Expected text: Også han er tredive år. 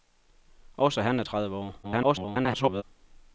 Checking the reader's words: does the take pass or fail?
fail